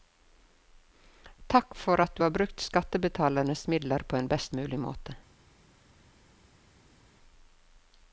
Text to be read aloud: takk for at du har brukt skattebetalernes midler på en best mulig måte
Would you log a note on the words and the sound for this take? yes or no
no